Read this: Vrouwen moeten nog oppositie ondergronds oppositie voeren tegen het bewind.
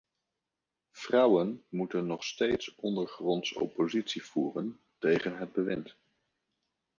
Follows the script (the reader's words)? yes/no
no